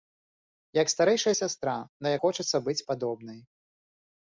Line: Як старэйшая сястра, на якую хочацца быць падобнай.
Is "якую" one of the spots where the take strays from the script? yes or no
yes